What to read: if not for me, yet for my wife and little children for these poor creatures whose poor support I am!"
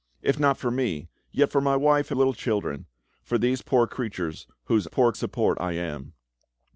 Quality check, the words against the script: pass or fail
pass